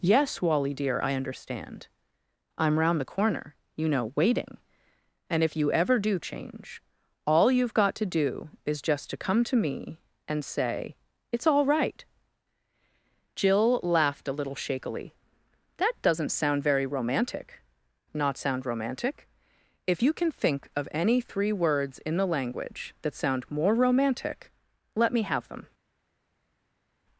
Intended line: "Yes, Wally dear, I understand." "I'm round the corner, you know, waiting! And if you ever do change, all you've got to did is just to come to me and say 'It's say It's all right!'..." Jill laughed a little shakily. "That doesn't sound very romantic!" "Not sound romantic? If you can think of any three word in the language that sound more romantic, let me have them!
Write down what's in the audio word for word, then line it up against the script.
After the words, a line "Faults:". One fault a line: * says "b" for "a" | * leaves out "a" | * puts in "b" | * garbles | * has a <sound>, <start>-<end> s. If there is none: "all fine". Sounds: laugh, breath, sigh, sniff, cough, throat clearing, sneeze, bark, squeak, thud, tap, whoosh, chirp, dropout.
"Yes, Wally dear, I understand." "I'm round the corner, you know, waiting! And if you ever do change, all you've got to do is just to come to me and say 'It's all right!'..." Jill laughed a little shakily. "That doesn't sound very romantic!" "Not sound romantic? If you can think of any three words in the language that sound more romantic, let me have them!
Faults:
* says "do" for "did"
* leaves out "say It's"
* says "words" for "word"